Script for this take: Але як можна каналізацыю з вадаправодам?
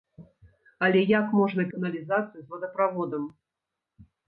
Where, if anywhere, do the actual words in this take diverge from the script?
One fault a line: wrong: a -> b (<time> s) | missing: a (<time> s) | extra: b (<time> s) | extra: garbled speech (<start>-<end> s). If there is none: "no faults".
no faults